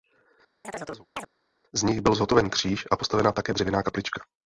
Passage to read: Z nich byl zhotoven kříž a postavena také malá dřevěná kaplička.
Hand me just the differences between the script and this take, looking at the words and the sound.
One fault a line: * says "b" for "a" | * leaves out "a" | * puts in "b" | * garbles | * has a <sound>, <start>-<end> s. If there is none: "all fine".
* has a chirp, 0.6-1.3 s
* leaves out "malá"